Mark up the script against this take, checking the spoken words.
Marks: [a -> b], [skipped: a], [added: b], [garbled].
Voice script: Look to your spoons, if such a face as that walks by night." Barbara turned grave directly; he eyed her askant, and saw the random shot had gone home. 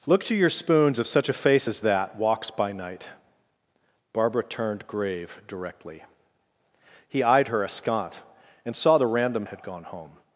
Look to your spoons, if such a face as that walks by night." Barbara turned grave directly; he eyed her askant, and saw the random [skipped: shot] had gone home.